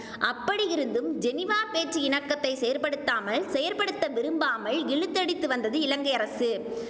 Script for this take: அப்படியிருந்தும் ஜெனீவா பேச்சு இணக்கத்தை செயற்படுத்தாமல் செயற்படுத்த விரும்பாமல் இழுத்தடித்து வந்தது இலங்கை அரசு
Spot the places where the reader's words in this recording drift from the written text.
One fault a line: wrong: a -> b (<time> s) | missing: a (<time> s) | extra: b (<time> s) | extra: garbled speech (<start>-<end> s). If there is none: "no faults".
no faults